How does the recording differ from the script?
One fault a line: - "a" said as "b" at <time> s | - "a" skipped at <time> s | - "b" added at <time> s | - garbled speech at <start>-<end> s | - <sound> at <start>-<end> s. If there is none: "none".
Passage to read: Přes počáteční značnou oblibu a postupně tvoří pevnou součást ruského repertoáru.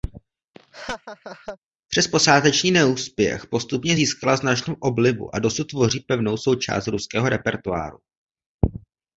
- laugh at 0.5-1.6 s
- "neúspěch postupně získala" added at 2.7 s
- "postupně" said as "dosud" at 5.4 s